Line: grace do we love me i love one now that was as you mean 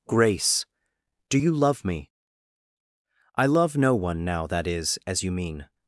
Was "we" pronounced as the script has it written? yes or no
no